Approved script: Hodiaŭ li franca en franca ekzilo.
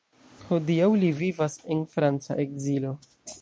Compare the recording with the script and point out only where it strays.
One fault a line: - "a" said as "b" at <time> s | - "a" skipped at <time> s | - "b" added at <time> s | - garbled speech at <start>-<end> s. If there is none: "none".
- "franca" said as "vivas" at 1.2 s